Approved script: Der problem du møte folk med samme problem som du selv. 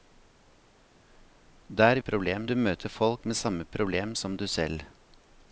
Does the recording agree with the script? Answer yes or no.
yes